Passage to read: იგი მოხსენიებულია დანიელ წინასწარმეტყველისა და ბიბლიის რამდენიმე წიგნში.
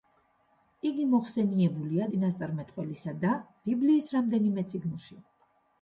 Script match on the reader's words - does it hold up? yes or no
no